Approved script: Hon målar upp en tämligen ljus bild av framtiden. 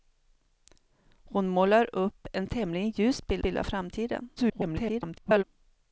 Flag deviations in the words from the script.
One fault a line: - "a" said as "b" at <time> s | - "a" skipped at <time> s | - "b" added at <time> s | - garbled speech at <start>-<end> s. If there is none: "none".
- "bild" added at 3.4 s
- garbled speech at 4.4-5.4 s